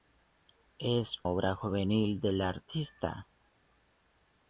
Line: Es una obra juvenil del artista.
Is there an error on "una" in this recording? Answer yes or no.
yes